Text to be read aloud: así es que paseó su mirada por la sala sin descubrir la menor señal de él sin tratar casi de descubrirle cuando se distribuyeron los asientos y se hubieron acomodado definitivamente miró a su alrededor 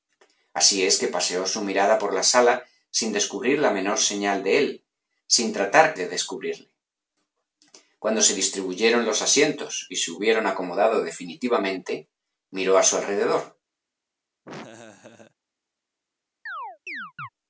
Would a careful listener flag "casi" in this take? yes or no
yes